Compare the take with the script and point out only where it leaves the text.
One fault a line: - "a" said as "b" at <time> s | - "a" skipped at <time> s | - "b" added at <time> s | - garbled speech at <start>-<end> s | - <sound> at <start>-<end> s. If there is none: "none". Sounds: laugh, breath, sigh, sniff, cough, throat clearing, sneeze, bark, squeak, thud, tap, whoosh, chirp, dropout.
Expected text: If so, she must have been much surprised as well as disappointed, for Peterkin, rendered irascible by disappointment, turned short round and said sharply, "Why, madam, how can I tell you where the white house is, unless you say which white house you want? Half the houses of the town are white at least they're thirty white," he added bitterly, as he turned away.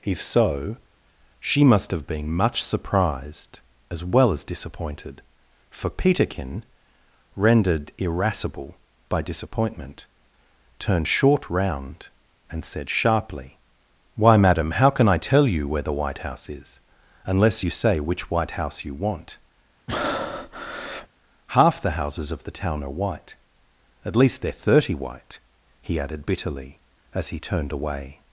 - breath at 19.9-21.1 s